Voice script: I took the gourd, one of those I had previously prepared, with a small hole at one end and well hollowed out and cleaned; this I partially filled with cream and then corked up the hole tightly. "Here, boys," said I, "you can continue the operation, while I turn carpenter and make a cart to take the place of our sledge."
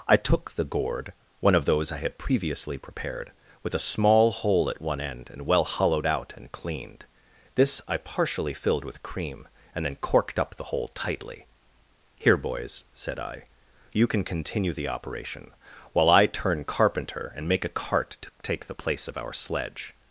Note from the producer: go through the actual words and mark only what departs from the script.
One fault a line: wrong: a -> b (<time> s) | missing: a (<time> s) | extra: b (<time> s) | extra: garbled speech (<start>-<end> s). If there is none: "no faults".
no faults